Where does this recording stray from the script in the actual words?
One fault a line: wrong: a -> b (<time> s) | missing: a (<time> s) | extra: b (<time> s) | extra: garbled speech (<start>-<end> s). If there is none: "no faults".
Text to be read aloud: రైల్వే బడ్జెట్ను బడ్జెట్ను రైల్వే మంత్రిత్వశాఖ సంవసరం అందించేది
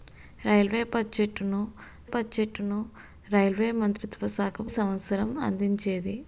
no faults